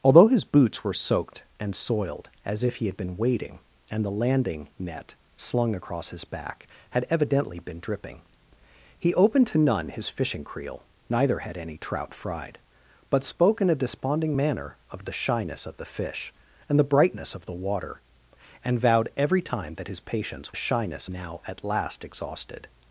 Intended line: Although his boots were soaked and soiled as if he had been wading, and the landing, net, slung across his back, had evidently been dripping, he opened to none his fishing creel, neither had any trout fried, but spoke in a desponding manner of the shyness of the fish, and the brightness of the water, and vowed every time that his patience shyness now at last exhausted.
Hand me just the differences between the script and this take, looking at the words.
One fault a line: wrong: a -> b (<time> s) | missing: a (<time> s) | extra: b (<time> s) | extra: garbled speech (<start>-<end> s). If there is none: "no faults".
no faults